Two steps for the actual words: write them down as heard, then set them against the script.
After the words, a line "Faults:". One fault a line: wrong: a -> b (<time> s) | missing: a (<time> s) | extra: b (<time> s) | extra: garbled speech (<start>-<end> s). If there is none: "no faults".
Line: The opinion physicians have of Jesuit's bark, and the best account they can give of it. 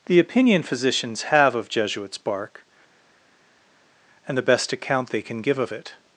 The opinion physicians have of Jesuit's bark, and the best account they can give of it.
Faults:
no faults